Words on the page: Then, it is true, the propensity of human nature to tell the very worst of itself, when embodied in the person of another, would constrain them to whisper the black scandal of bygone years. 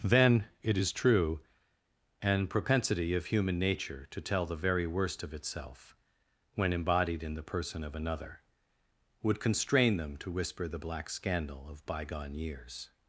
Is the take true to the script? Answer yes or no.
no